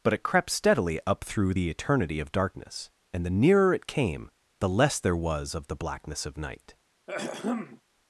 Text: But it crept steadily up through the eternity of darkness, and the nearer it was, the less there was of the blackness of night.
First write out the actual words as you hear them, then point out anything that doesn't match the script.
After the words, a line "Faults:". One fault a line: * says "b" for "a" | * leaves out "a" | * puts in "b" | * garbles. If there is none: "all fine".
But it crept steadily up through the eternity of darkness, and the nearer it came, the less there was of the blackness of night.
Faults:
* says "came" for "was"